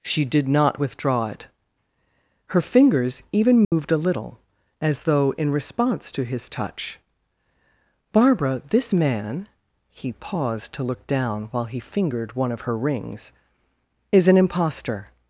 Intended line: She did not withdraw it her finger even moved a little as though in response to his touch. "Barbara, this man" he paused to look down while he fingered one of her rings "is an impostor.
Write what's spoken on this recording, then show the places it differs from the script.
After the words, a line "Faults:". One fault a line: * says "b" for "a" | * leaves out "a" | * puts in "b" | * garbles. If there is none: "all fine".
She did not withdraw it her fingers even moved a little as though in response to his touch. "Barbara, this man" he paused to look down while he fingered one of her rings "is an impostor.
Faults:
* says "fingers" for "finger"